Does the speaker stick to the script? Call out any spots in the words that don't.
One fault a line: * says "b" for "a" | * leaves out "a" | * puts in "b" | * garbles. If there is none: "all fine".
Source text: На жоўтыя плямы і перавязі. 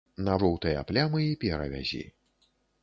all fine